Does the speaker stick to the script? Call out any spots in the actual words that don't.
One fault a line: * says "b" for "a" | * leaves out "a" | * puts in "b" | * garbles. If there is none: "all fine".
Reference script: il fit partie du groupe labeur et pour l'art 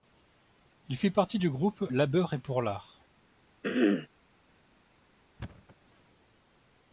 all fine